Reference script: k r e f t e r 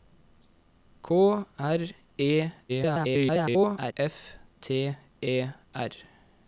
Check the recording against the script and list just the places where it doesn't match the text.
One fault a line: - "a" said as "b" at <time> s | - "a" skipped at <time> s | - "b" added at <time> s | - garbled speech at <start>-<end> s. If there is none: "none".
- garbled speech at 2.7-3.9 s